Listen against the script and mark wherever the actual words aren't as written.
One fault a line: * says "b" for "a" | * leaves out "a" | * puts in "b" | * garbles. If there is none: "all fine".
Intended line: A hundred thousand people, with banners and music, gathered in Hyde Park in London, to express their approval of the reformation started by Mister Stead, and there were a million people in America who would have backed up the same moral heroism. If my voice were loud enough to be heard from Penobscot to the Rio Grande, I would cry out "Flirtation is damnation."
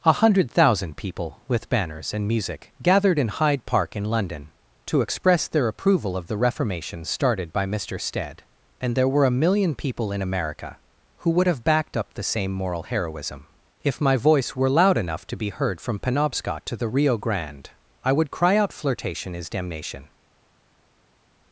all fine